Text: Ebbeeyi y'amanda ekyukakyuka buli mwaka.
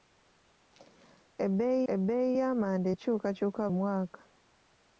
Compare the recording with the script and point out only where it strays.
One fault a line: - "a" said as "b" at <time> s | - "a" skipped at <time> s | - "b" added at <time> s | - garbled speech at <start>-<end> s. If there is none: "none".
- "ebbeeyi" added at 1.9 s
- "buli" skipped at 3.6 s